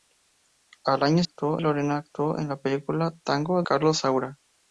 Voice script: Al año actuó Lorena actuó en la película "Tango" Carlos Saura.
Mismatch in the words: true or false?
false